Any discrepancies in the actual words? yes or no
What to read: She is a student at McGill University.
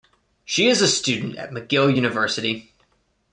no